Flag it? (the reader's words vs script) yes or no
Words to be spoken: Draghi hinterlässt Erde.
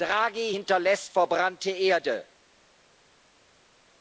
yes